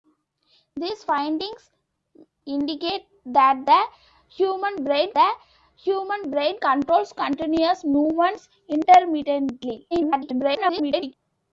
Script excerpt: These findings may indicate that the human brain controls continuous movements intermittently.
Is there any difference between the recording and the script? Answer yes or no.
yes